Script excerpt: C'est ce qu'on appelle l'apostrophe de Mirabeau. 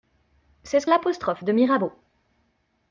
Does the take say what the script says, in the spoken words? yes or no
no